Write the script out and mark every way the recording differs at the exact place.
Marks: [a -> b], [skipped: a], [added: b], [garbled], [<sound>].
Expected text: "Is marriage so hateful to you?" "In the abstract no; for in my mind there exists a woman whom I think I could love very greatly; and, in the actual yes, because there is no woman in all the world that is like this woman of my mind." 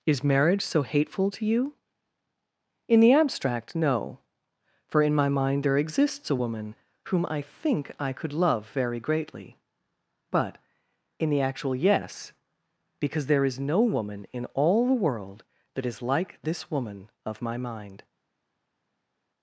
"Is marriage so hateful to you?" "In the abstract no; for in my mind there exists a woman whom I think I could love very greatly; [and, -> but] in the actual yes, because there is no woman in all the world that is like this woman of my mind."